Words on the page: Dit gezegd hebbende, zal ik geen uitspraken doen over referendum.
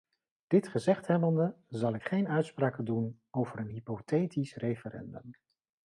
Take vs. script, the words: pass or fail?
fail